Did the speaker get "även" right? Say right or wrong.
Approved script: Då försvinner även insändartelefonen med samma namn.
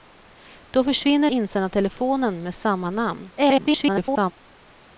wrong